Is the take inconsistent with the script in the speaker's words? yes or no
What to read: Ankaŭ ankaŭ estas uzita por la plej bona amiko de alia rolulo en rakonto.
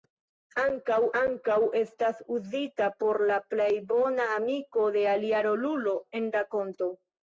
no